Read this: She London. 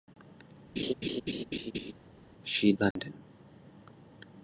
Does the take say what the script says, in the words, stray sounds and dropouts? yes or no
no